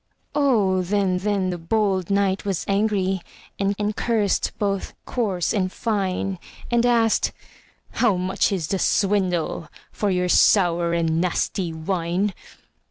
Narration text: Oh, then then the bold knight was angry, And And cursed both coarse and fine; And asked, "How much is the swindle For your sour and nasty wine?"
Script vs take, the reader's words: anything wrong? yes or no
no